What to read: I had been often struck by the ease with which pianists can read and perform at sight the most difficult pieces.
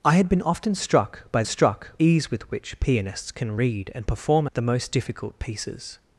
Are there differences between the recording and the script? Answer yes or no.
yes